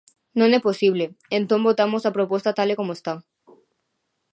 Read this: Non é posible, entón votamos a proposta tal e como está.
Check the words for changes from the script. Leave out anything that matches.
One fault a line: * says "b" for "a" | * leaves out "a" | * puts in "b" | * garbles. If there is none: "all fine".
all fine